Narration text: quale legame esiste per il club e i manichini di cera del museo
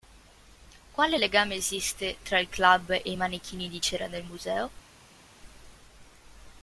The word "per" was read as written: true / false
false